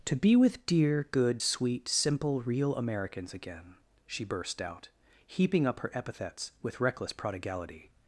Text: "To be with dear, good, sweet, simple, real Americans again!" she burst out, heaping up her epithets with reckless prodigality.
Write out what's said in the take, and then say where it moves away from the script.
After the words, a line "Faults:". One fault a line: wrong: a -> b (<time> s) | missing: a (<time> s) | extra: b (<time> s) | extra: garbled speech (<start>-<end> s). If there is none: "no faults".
"To be with dear, good, sweet, simple, real Americans again!" she burst out, heaping up her epithets with reckless prodigality.
Faults:
no faults